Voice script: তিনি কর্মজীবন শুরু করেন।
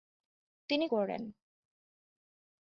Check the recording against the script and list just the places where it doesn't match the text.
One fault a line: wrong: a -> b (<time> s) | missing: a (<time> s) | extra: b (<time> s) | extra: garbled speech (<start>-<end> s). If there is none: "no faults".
missing: কর্মজীবন শুরু (0.8 s)